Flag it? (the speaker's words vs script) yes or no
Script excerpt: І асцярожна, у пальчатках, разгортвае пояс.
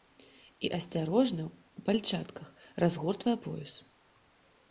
no